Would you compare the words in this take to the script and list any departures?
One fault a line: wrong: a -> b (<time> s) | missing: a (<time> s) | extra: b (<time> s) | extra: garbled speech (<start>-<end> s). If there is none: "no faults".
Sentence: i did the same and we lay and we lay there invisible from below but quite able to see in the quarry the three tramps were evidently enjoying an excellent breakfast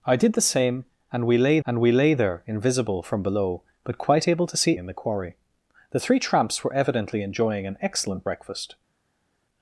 no faults